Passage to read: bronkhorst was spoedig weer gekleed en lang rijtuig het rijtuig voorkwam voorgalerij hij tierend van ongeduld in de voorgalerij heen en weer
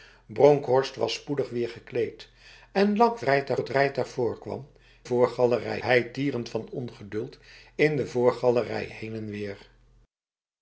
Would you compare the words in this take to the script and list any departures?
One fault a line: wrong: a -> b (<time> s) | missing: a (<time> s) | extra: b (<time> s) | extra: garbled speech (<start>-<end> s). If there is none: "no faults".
no faults